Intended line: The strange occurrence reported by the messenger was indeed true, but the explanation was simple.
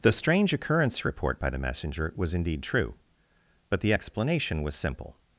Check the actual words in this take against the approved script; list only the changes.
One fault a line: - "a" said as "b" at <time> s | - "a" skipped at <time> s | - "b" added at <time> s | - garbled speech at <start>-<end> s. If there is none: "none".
- "reported" said as "report" at 1.1 s